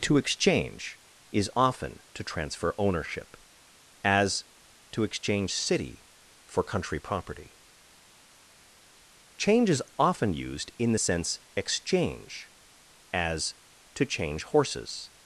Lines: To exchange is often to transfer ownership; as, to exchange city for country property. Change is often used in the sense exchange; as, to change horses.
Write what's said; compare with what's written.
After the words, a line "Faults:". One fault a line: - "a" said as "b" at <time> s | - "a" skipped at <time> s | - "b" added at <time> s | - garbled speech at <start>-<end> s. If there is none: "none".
To exchange is often to transfer ownership; as, to exchange city for country property. Change is often used in the sense exchange; as, to change horses.
Faults:
none